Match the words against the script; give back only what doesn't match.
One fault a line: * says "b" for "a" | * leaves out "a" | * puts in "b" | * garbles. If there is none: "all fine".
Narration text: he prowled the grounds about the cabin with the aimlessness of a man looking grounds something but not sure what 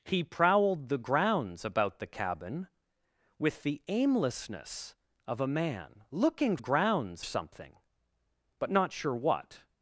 all fine